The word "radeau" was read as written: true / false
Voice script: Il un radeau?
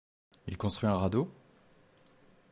true